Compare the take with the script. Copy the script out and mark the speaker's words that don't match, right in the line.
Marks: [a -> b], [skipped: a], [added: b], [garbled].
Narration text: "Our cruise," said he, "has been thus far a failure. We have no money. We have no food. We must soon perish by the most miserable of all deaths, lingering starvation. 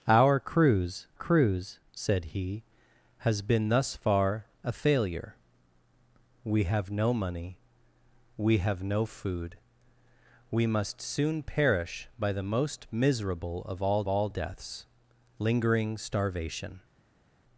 "Our cruise," [added: cruise] said he, "has been thus far a failure. We have no money. We have no food. We must soon perish by the most miserable of all [added: all] deaths, lingering starvation.